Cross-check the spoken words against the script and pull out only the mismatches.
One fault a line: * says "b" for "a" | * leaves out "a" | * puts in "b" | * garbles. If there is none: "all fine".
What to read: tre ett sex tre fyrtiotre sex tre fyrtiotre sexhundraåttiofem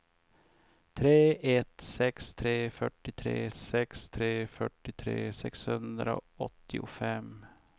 all fine